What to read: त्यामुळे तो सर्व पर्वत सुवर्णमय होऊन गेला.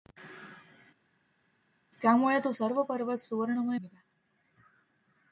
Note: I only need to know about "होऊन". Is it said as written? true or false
false